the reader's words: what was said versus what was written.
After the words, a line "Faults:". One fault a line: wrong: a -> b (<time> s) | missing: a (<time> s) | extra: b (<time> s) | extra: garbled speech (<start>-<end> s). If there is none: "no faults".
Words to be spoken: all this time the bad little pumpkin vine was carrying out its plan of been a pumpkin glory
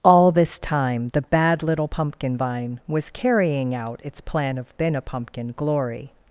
all this time the bad little pumpkin vine was carrying out its plan of been a pumpkin glory
Faults:
no faults